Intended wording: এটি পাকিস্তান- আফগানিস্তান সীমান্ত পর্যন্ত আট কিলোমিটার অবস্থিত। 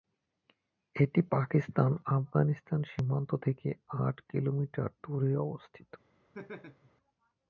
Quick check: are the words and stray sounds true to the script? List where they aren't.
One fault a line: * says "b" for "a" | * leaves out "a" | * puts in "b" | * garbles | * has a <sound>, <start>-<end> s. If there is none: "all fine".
* says "থেকে" for "পর্যন্ত"
* puts in "দূরে"
* has a laugh, 6.3-6.9 s